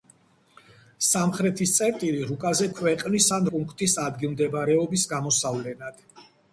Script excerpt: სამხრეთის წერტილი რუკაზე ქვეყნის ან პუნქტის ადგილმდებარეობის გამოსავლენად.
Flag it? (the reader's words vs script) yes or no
no